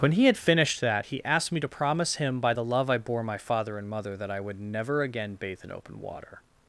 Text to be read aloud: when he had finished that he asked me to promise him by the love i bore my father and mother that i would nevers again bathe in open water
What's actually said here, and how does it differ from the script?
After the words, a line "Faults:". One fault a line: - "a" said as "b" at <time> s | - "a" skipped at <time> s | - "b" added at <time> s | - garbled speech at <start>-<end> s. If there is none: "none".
when he had finished that he asked me to promise him by the love i bore my father and mother that i would never again bathe in open water
Faults:
- "nevers" said as "never" at 4.6 s